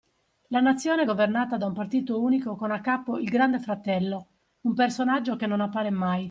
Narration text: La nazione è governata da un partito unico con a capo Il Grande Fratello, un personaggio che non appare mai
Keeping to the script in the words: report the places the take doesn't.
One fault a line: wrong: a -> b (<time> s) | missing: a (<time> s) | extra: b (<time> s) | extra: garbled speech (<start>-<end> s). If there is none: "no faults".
no faults